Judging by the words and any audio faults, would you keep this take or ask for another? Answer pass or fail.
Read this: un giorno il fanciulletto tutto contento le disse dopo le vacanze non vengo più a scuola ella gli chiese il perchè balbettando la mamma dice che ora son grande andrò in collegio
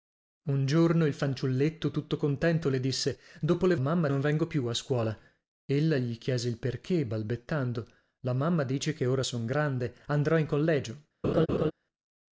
fail